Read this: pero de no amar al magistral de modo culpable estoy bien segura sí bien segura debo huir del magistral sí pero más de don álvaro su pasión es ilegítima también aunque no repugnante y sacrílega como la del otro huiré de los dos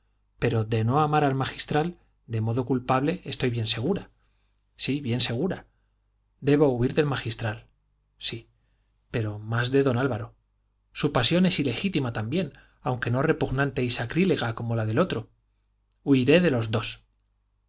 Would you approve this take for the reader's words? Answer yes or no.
yes